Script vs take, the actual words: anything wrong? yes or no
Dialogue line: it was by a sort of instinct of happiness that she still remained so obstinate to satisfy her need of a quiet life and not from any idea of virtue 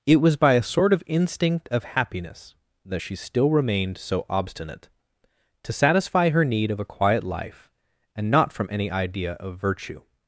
no